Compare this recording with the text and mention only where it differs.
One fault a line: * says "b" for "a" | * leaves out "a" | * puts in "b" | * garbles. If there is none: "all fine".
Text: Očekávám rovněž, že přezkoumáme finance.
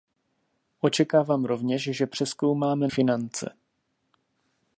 all fine